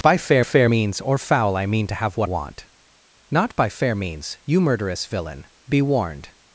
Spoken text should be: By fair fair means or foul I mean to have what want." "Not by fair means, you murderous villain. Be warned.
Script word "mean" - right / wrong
right